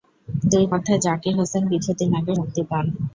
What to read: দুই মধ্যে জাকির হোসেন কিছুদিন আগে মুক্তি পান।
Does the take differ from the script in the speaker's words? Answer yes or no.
no